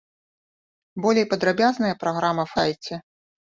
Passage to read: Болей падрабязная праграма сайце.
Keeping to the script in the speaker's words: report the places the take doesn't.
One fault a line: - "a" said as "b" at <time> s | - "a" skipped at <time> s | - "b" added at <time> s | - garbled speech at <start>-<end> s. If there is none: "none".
none